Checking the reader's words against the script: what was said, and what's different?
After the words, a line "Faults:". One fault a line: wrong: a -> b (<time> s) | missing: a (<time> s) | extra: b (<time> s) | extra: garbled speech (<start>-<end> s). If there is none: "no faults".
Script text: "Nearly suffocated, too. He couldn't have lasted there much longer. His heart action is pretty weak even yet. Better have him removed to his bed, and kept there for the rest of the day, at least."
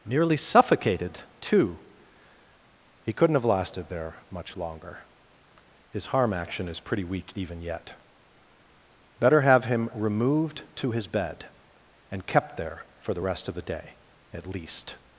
"Nearly suffocated, too. He couldn't have lasted there much longer. His harm action is pretty weak even yet. Better have him removed to his bed, and kept there for the rest of the day, at least."
Faults:
wrong: heart -> harm (6.1 s)